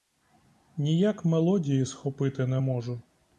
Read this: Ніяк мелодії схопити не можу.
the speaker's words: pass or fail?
pass